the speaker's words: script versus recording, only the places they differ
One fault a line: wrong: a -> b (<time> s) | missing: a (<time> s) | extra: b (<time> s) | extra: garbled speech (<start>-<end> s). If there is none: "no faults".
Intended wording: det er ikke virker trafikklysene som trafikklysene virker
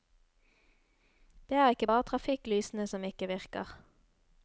wrong: virker -> bare (1.8 s)
wrong: trafikklysene -> ikke (3.0 s)